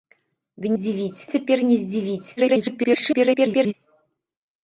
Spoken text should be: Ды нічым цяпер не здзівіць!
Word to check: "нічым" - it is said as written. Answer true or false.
false